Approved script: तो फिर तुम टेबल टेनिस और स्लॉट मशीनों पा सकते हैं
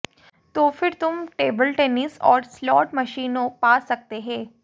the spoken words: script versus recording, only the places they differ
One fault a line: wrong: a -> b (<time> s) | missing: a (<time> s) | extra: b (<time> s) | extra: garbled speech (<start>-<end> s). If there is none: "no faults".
no faults